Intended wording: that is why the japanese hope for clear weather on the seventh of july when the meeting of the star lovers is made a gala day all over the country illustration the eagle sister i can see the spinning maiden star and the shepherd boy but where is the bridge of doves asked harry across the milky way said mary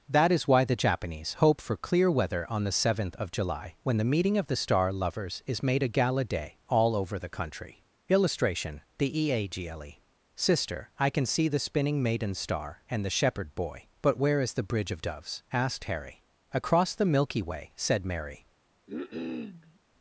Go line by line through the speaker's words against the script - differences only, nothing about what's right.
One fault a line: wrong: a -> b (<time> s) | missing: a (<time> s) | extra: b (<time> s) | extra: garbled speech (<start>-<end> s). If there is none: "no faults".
no faults